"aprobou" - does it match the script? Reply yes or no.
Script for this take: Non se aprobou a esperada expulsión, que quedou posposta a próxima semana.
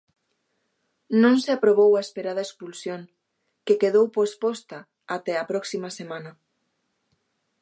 yes